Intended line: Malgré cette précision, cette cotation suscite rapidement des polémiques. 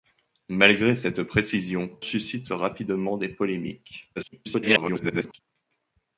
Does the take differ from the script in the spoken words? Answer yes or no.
yes